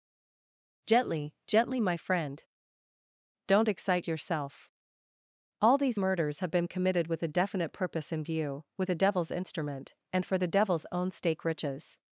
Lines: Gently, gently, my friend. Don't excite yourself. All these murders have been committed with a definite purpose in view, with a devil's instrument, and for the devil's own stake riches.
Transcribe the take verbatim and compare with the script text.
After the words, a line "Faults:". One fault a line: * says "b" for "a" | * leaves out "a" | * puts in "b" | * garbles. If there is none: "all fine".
Gently, gently, my friend. Don't excite yourself. All these murders have been committed with a definite purpose in view, with a devil's instrument, and for the devil's own stake riches.
Faults:
all fine